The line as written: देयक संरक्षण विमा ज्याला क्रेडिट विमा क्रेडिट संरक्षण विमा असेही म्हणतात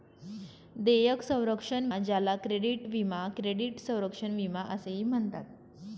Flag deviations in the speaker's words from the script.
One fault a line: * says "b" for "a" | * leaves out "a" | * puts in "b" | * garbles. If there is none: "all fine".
* leaves out "विमा"